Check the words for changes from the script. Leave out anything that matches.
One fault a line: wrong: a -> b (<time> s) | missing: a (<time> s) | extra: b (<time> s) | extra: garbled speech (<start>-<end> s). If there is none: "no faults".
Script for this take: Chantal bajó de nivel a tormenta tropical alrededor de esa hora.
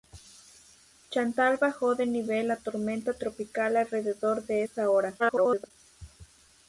extra: garbled speech (5.2-5.7 s)